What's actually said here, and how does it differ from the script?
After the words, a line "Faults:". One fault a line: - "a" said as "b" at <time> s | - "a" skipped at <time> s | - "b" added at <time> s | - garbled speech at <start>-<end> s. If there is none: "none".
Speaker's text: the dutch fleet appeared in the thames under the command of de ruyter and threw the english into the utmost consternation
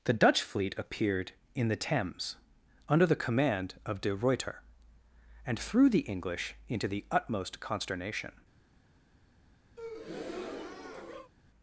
the dutch fleet appeared in the thames under the command of de ruyter and threw the english into the utmost consternation
Faults:
none